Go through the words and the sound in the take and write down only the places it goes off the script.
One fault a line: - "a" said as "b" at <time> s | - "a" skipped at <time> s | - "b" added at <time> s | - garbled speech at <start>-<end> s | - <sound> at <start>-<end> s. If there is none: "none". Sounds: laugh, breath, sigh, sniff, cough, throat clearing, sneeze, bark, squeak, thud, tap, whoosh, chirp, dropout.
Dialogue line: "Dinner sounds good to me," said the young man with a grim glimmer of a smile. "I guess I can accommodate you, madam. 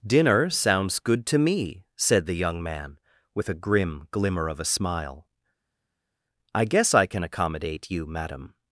none